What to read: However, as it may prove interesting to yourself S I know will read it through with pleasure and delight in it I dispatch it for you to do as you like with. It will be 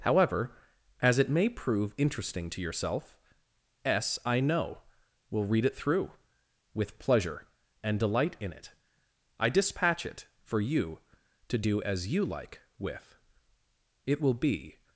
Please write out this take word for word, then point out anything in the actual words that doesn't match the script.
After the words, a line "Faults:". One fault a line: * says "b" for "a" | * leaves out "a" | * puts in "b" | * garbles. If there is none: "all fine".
However, as it may prove interesting to yourself S I know will read it through with pleasure and delight in it I dispatch it for you to do as you like with. It will be
Faults:
all fine